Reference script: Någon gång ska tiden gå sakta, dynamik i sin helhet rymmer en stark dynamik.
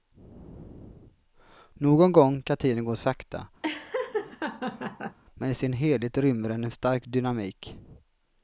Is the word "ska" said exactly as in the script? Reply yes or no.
no